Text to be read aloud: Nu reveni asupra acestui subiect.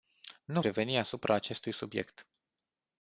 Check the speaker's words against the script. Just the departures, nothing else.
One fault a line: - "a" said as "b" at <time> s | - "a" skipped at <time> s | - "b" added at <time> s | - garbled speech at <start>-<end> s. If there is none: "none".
none